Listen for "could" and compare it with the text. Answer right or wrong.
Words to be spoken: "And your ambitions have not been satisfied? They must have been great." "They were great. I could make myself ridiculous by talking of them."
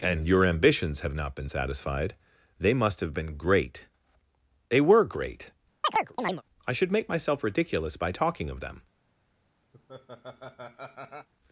wrong